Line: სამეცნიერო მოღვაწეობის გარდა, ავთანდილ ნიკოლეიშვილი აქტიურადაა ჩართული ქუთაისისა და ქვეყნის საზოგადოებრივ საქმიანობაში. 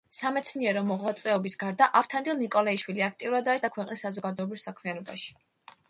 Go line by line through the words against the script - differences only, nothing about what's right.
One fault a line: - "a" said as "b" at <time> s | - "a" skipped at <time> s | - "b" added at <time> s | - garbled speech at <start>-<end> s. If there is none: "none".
- "ჩართული ქუთაისისა" skipped at 3.6 s